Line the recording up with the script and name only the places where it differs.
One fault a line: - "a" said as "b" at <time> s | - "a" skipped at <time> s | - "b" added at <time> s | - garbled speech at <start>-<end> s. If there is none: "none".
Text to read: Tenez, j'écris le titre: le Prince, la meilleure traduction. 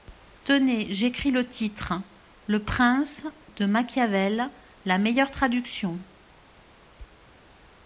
- "de Machiavel" added at 3.5 s